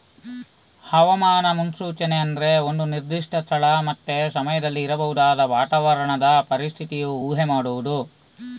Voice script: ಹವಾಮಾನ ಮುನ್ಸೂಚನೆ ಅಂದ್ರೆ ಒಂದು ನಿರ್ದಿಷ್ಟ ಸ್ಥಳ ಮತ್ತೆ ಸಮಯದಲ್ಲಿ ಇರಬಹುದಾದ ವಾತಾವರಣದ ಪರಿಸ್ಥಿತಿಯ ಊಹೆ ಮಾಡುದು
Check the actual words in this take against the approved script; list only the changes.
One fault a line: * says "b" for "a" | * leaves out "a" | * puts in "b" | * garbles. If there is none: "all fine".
all fine